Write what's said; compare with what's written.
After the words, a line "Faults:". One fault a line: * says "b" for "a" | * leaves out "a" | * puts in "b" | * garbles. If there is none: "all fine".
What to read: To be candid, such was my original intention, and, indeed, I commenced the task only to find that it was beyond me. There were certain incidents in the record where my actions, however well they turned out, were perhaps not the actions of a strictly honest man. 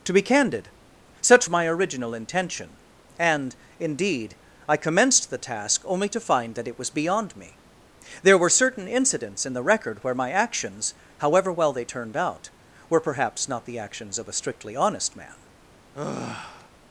To be candid, such my original intention, and, indeed, I commenced the task only to find that it was beyond me. There were certain incidents in the record where my actions, however well they turned out, were perhaps not the actions of a strictly honest man.
Faults:
* leaves out "was"